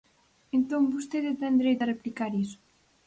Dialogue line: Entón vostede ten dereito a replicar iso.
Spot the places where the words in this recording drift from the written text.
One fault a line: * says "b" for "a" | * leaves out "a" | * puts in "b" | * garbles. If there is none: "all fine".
all fine